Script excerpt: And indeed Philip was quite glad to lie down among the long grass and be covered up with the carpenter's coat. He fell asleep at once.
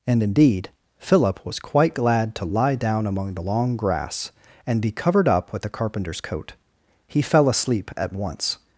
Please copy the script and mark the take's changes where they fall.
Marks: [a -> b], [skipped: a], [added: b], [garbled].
And indeed Philip was quite glad to lie down among the long grass and be covered up with the carpenter's coat. He fell asleep at once.